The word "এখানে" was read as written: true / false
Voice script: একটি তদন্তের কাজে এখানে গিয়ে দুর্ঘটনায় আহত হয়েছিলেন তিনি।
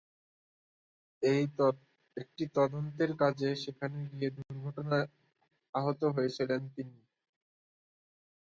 false